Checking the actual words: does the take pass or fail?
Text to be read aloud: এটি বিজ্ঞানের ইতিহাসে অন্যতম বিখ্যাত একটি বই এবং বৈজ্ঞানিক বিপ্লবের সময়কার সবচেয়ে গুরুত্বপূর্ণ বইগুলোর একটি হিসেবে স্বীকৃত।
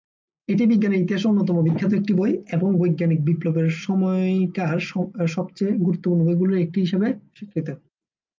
pass